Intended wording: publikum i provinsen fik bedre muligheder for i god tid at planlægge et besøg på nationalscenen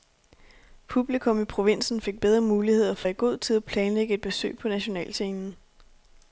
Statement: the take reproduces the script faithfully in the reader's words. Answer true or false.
true